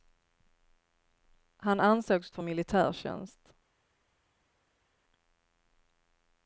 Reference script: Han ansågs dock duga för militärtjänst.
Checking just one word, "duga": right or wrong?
wrong